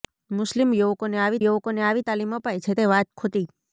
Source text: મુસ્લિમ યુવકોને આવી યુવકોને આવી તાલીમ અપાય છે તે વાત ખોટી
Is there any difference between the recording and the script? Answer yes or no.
no